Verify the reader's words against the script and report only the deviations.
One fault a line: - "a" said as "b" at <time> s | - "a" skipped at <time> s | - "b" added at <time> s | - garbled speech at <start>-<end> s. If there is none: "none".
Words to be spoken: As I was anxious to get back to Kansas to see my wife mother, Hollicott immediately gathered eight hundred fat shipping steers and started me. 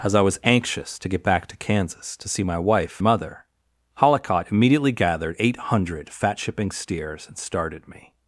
none